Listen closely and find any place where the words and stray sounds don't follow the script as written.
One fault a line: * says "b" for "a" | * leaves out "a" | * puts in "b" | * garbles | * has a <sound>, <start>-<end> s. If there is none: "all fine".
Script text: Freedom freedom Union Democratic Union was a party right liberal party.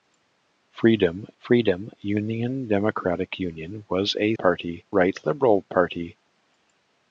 all fine